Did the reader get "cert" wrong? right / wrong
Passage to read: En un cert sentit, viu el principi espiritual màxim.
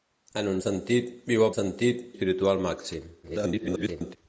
wrong